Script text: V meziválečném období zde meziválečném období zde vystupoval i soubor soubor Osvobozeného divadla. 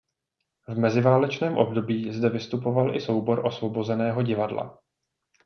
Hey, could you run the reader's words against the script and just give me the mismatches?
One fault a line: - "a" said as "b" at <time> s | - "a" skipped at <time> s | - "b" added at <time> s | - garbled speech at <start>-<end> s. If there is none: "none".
- "meziválečném období zde" skipped at 2.3 s
- "soubor" skipped at 3.4 s